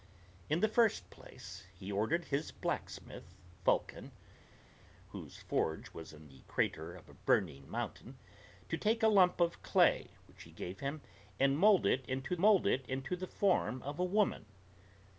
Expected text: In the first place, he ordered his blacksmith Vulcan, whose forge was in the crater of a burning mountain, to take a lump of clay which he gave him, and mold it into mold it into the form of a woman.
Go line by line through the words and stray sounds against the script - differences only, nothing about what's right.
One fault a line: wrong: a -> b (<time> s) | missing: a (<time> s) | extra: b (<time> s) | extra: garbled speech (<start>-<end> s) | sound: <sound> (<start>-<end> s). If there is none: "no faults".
no faults